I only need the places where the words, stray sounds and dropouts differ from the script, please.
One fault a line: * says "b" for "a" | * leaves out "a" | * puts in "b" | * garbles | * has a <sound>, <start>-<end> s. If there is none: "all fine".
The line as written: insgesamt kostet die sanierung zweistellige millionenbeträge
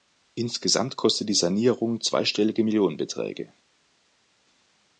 all fine